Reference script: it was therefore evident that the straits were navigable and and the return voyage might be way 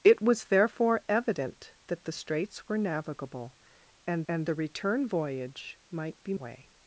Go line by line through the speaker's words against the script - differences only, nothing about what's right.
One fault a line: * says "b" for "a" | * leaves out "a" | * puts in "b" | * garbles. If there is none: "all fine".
all fine